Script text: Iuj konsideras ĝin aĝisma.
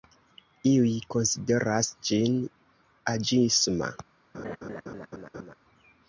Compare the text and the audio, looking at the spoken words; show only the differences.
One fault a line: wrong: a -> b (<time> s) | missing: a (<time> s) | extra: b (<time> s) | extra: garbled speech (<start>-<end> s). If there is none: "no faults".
no faults